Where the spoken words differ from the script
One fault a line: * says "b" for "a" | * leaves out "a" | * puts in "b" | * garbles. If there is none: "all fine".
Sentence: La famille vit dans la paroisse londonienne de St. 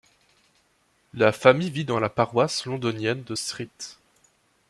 all fine